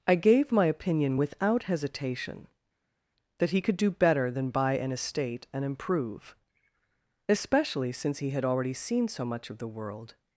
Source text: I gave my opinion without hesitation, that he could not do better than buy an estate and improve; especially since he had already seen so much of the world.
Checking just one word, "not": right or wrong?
wrong